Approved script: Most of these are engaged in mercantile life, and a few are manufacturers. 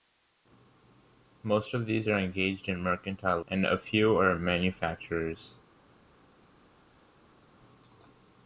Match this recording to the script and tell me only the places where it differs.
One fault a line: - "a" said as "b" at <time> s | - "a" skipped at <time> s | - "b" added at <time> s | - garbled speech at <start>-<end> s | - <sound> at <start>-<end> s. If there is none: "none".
- "life" skipped at 3.4 s